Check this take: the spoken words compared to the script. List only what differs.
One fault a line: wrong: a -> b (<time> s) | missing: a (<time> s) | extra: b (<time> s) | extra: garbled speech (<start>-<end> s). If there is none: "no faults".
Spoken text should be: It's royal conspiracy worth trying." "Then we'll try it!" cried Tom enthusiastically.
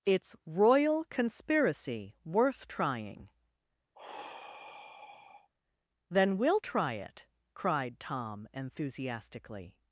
no faults